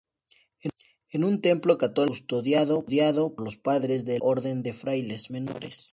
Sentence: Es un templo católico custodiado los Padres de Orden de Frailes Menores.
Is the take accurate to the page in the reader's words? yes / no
yes